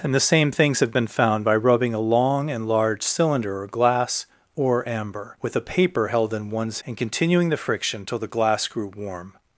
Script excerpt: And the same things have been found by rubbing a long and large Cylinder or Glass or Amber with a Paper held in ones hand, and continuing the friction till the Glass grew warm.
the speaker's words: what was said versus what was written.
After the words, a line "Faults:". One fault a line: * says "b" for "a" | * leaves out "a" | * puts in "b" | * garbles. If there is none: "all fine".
And the same things have been found by rubbing a long and large Cylinder or Glass or Amber with a Paper held in ones and continuing the friction till the Glass grew warm.
Faults:
* leaves out "hand"